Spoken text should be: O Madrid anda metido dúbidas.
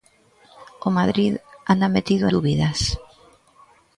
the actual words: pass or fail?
pass